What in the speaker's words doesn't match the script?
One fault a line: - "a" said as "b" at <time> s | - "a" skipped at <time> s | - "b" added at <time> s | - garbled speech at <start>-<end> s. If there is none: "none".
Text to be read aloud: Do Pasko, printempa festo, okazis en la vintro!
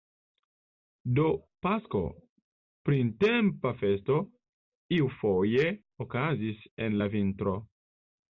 - "iufoje" added at 5.0 s